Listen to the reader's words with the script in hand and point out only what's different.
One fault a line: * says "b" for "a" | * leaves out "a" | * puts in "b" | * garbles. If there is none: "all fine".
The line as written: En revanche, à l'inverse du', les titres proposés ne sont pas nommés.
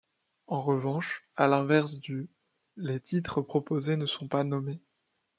all fine